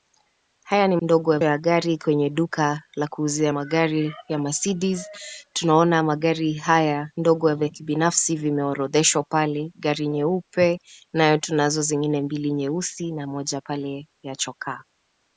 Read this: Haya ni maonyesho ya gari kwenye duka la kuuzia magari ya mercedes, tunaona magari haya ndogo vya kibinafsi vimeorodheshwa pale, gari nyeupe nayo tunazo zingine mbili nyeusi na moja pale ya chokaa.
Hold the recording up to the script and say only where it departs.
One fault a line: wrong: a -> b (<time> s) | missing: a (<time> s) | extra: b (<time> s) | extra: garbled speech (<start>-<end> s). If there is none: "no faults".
wrong: maonyesho -> ndogo (1.0 s)